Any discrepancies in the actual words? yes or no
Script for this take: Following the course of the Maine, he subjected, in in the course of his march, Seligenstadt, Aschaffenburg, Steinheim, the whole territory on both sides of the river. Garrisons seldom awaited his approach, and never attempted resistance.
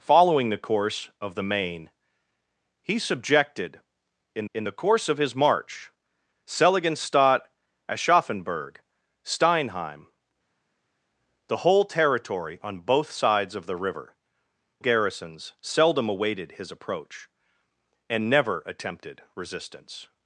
no